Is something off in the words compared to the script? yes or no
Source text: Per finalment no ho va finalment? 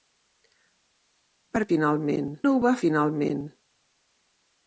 no